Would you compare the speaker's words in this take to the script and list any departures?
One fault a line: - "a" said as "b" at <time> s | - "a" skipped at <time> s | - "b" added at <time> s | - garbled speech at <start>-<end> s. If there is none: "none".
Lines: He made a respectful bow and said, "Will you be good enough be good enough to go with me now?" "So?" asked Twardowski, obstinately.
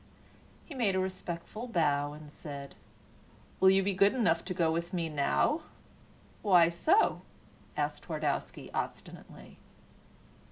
- "be good enough" skipped at 4.4 s
- "Why" added at 6.4 s